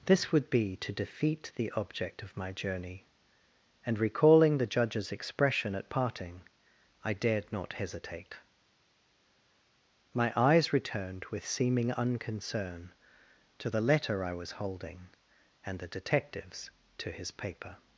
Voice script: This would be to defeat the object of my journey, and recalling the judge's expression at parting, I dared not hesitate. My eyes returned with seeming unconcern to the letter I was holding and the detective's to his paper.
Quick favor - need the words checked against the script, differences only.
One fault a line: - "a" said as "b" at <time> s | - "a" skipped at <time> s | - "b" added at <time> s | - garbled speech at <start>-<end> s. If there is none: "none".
none